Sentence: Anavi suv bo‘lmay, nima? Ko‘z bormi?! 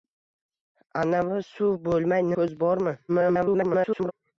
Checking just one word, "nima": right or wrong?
wrong